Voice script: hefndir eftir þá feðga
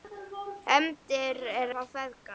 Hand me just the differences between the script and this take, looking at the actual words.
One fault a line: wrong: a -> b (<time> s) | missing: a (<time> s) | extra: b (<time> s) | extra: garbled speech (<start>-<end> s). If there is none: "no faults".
missing: eftir (1.4 s)